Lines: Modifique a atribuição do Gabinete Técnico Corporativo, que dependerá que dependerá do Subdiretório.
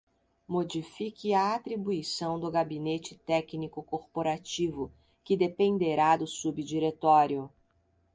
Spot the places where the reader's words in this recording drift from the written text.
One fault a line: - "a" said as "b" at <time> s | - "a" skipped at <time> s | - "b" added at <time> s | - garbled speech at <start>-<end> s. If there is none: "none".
- "que dependerá" skipped at 6.1 s